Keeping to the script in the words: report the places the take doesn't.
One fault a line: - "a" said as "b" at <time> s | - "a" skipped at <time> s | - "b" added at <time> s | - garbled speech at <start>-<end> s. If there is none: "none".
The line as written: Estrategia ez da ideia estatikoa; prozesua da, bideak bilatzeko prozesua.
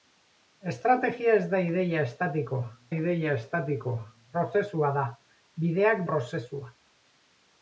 - "ideia estatikoa" added at 2.9 s
- "bilatzeko" skipped at 6.0 s